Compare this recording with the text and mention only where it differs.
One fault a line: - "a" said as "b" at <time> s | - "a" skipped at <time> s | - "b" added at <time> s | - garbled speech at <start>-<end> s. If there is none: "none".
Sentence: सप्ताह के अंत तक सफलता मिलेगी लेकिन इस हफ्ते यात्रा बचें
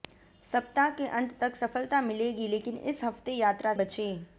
none